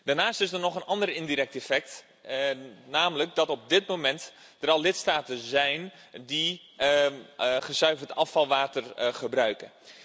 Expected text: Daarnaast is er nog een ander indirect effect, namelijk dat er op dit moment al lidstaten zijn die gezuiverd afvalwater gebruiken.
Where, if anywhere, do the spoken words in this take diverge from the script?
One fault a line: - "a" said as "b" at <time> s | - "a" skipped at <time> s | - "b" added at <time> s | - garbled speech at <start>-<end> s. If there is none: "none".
none